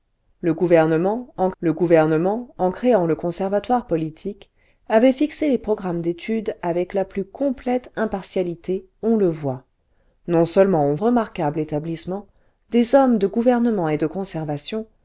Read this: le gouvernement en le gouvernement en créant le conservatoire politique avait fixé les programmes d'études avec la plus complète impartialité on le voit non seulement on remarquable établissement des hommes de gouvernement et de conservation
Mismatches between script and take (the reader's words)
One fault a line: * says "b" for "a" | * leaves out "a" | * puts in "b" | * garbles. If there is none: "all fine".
all fine